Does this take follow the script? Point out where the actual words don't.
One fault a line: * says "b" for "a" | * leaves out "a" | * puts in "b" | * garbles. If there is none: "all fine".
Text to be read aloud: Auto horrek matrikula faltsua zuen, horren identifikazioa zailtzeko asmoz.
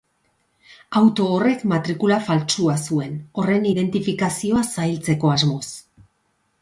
all fine